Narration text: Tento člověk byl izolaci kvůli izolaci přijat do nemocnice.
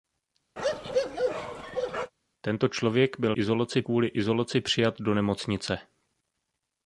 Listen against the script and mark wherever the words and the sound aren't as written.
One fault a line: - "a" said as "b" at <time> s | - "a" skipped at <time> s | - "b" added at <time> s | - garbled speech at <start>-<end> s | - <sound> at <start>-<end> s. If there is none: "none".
- bark at 0.6-2.1 s